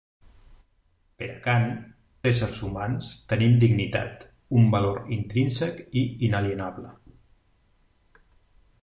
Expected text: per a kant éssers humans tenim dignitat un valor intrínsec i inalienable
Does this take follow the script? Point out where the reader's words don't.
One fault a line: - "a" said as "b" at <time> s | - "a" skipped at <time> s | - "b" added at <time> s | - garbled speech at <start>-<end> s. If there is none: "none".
none